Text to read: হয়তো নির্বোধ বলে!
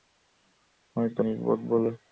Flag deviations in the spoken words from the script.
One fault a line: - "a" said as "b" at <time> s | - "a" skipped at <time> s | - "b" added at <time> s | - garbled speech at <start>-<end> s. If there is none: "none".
none